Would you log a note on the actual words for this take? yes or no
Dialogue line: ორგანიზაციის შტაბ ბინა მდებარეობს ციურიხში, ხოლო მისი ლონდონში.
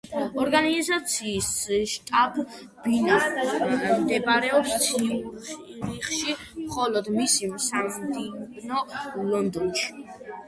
yes